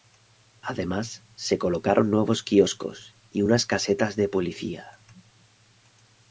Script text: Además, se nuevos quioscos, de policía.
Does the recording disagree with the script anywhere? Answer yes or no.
yes